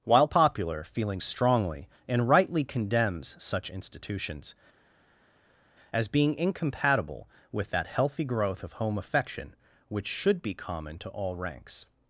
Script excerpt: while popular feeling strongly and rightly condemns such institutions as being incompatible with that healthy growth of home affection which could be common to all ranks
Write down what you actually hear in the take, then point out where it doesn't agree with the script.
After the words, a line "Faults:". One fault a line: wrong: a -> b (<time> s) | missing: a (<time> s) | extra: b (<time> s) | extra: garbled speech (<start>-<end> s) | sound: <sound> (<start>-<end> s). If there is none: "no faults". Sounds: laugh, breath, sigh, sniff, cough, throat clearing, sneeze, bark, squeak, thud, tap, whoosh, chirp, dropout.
while popular feeling strongly and rightly condemns such institutions as being incompatible with that healthy growth of home affection which should be common to all ranks
Faults:
wrong: could -> should (10.1 s)